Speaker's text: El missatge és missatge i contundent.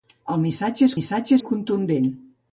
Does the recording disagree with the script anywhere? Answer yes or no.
no